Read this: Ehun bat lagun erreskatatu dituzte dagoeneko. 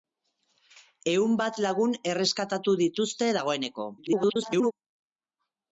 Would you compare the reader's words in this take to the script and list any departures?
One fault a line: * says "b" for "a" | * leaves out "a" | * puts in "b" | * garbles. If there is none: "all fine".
* garbles